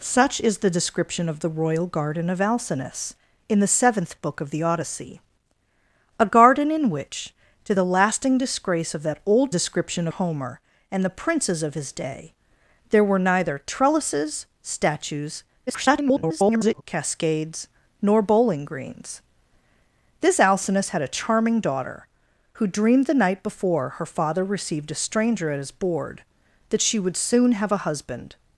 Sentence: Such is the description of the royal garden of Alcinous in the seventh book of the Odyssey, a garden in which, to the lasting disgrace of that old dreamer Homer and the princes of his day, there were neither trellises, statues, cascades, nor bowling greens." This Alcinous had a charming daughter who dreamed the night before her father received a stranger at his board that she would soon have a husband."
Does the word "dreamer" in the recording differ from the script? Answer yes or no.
yes